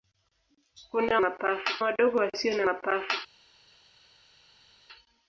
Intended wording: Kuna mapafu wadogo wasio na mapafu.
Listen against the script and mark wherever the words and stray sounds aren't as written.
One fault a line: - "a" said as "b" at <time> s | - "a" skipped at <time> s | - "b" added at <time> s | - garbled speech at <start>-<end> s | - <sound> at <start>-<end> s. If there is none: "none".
none